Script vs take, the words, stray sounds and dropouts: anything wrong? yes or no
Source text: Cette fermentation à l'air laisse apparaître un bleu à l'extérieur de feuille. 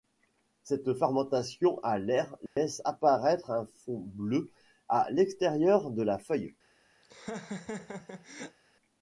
yes